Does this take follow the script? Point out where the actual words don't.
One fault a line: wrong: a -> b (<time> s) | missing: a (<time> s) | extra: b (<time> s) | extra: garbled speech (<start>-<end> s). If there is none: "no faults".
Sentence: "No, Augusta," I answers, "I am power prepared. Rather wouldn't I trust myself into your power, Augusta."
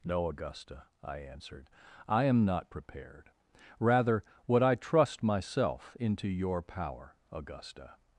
wrong: answers -> answered (1.2 s)
wrong: power -> not (2.5 s)
wrong: wouldn't -> would (4.5 s)